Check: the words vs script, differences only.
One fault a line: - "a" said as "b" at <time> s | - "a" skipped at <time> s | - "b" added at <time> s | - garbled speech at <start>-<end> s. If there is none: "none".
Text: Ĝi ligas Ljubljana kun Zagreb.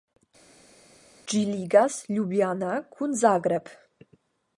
none